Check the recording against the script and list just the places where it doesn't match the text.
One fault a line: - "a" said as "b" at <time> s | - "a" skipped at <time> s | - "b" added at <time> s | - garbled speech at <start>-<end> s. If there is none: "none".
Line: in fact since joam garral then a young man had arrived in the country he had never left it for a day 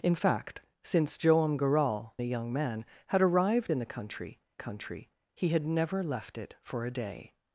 - "then" skipped at 2.1 s
- "country" added at 4.6 s